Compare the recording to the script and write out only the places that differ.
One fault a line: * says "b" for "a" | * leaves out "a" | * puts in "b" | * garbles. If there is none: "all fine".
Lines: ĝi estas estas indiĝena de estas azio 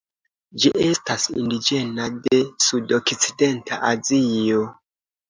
* leaves out "estas"
* says "sudokcidenta" for "estas"